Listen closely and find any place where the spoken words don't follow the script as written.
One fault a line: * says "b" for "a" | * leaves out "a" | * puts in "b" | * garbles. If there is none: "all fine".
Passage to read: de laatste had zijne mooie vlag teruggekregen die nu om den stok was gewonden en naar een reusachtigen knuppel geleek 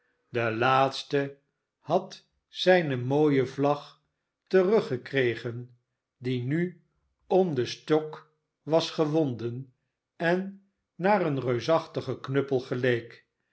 all fine